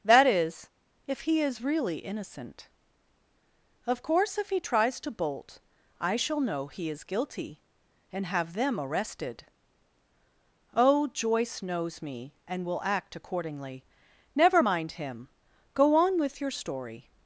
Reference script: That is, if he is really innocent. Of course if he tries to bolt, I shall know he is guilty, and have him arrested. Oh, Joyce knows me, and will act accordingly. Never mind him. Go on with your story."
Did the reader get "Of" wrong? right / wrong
right